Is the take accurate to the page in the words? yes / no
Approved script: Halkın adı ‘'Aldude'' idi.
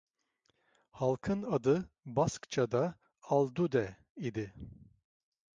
no